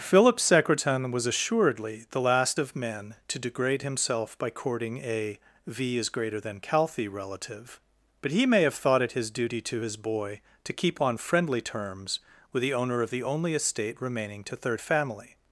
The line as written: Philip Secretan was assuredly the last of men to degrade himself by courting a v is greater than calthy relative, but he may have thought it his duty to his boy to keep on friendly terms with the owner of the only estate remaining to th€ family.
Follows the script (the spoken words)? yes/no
no